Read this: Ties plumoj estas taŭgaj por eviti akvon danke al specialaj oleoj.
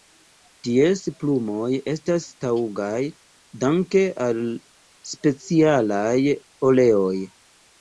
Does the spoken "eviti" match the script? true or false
false